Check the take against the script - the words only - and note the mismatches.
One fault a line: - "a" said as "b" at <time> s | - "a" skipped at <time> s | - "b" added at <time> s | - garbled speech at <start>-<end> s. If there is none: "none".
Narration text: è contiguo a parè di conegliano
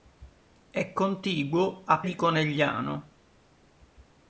- "parè" skipped at 2.0 s